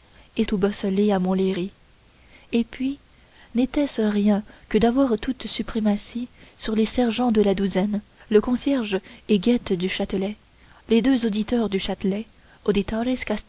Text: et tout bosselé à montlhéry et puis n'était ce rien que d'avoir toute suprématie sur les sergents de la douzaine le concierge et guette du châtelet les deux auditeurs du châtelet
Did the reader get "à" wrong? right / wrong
right